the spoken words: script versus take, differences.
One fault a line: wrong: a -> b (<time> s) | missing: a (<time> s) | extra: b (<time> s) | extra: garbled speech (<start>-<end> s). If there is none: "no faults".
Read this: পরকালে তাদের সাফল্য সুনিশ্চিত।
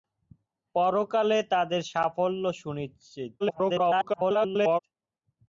extra: garbled speech (3.4-4.8 s)